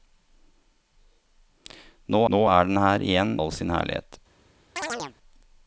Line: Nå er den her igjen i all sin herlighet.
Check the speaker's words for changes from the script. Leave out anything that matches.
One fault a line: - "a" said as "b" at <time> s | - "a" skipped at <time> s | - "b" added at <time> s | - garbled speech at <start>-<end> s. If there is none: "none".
- "nå" added at 2.3 s
- "i" skipped at 3.3 s